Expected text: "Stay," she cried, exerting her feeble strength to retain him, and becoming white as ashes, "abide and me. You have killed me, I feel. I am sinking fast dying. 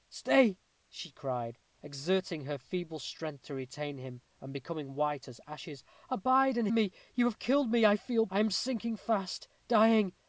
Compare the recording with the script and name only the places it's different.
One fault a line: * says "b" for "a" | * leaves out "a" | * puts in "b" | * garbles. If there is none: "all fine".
all fine